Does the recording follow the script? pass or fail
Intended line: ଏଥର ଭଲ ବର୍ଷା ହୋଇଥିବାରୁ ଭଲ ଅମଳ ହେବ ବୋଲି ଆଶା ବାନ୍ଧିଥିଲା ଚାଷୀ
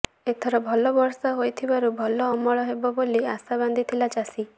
pass